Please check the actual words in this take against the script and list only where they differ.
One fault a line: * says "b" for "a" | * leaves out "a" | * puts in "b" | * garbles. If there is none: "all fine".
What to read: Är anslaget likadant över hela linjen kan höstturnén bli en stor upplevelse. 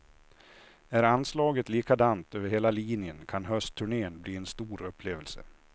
all fine